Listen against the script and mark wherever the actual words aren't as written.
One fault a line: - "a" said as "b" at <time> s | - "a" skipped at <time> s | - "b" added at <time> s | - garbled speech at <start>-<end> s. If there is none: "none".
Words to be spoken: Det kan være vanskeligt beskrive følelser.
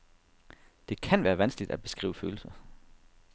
- "at" added at 1.7 s